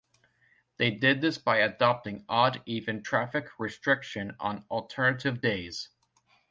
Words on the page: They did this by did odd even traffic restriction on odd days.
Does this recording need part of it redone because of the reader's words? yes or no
yes